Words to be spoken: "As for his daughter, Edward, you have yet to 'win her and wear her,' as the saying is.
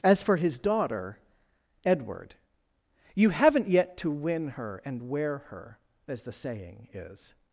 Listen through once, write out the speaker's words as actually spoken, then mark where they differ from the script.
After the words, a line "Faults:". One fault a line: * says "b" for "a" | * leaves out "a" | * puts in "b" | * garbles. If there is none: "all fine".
"As for his daughter, Edward, you haven't yet to 'win her and wear her,' as the saying is.
Faults:
* says "haven't" for "have"